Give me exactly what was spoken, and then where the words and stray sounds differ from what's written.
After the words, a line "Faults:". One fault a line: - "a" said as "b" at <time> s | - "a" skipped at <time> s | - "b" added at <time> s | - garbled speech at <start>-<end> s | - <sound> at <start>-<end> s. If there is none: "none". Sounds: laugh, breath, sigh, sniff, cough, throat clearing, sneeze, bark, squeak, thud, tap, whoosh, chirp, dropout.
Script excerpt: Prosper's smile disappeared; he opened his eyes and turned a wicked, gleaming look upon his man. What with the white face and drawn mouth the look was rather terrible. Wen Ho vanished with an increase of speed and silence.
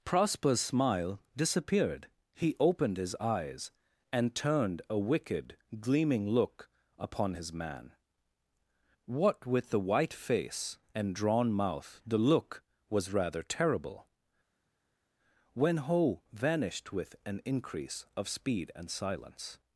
Prosper's smile disappeared; he opened his eyes and turned a wicked, gleaming look upon his man. What with the white face and drawn mouth the look was rather terrible. Wen Ho vanished with an increase of speed and silence.
Faults:
none